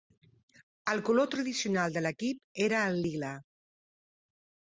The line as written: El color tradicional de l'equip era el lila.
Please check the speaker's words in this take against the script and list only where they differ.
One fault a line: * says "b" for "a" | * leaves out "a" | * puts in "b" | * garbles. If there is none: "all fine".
all fine